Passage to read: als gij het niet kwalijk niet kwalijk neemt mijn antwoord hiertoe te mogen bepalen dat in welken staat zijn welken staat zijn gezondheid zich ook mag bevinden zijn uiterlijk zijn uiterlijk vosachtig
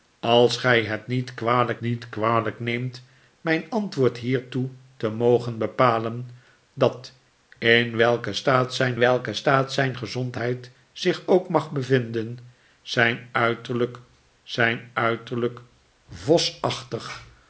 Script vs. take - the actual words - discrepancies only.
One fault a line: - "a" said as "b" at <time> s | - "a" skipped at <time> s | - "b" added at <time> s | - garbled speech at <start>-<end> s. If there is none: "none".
none